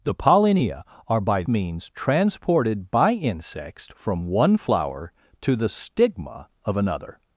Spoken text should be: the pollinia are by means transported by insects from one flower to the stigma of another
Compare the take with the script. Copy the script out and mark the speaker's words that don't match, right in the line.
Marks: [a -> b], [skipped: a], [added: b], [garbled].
the pollinia are by means transported by insects from one flower to the stigma of another